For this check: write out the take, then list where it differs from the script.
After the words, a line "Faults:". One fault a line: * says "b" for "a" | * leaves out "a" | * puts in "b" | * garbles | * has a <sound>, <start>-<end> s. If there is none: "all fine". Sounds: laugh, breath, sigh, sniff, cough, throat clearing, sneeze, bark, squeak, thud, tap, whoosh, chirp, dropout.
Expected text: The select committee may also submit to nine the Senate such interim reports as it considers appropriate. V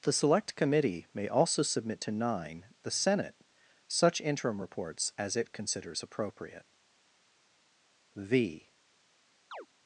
The select committee may also submit to nine the Senate such interim reports as it considers appropriate. V
Faults:
* has a chirp, 9.5-9.7 s